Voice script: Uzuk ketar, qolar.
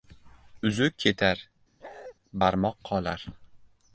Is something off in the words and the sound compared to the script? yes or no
yes